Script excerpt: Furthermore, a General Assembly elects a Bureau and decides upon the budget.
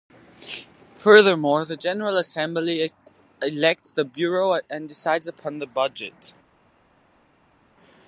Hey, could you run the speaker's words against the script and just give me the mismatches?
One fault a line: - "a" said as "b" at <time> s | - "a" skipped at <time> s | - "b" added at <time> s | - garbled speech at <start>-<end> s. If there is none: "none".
- "a" said as "the" at 1.6 s
- "a" said as "the" at 3.9 s